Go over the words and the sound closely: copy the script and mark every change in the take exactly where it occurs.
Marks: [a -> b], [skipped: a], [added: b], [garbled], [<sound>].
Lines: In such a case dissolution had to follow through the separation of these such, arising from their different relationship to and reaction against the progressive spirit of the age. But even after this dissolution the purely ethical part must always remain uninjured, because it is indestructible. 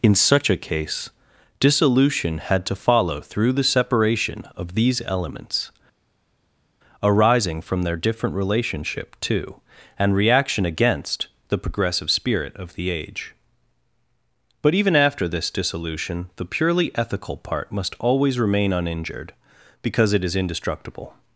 In such a case dissolution had to follow through the separation of these [such, -> elements] arising from their different relationship to and reaction against the progressive spirit of the age. But even after this dissolution the purely ethical part must always remain uninjured, because it is indestructible.